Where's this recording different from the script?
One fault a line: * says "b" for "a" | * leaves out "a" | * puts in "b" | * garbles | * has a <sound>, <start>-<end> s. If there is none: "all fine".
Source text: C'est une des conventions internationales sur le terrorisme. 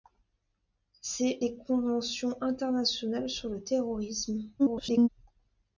* leaves out "une"
* garbles